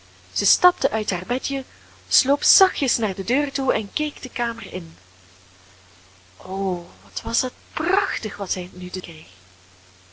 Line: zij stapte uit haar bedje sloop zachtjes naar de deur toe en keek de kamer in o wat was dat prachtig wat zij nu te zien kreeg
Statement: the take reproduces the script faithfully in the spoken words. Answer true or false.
false